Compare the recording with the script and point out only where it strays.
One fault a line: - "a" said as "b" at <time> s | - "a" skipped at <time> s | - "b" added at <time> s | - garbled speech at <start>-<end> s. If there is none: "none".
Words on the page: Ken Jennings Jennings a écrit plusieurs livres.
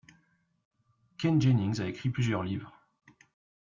- "Jennings" skipped at 1.8 s